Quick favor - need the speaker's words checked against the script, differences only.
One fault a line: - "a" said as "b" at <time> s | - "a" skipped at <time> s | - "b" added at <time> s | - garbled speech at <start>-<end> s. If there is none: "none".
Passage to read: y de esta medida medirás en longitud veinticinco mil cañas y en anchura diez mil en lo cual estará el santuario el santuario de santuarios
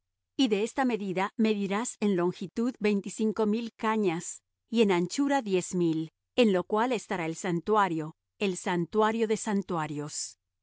none